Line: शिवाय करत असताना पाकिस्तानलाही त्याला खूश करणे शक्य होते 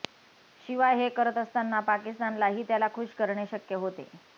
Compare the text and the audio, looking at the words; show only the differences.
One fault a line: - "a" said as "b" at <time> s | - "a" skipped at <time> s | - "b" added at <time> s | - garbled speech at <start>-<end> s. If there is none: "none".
- "हे" added at 1.0 s